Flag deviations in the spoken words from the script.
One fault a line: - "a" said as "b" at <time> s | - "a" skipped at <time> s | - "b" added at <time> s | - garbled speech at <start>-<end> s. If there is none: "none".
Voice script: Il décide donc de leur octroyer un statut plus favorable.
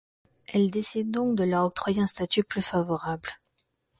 - "Il" said as "Elle" at 0.5 s